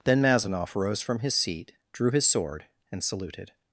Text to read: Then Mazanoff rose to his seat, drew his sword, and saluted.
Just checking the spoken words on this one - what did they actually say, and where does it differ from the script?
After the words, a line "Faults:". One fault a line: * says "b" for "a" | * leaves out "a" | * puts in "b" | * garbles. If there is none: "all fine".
Then Mazanoff rose from his seat, drew his sword, and saluted.
Faults:
* says "from" for "to"